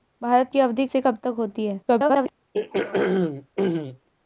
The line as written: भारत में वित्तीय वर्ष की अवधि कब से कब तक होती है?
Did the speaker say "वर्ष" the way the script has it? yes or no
no